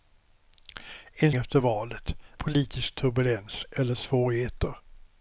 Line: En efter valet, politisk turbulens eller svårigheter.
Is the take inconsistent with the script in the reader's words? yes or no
no